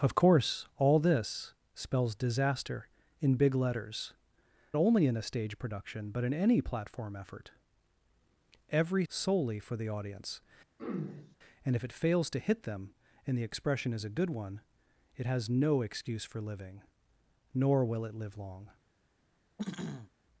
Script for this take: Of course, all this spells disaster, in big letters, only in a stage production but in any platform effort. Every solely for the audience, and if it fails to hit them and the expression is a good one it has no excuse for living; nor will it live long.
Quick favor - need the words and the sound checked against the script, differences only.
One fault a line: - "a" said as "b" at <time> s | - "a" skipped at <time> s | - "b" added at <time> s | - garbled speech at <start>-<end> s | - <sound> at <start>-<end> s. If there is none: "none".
- throat clearing at 10.8-11.4 s
- throat clearing at 19.6-20.1 s